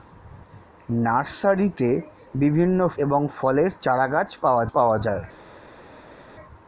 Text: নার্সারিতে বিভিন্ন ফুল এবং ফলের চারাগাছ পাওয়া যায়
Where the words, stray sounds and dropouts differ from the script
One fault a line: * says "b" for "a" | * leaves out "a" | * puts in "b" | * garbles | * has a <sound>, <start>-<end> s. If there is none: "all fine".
* leaves out "ফুল"
* puts in "পাওয়া"